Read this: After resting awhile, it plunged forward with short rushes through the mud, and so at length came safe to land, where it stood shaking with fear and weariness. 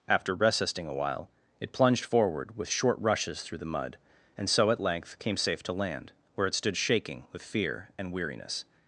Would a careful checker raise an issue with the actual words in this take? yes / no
yes